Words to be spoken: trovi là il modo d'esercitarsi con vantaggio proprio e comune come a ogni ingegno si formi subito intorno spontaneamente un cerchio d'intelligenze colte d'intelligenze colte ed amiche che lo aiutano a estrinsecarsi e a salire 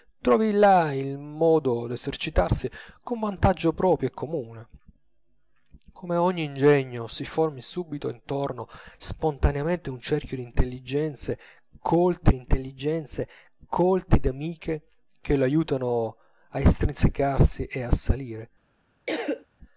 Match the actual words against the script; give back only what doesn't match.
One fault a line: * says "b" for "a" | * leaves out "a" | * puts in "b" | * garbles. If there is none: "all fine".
all fine